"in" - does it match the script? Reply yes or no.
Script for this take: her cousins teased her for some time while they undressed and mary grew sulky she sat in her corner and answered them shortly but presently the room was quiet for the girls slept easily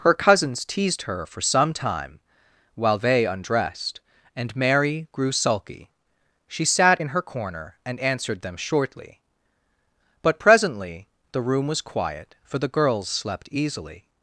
yes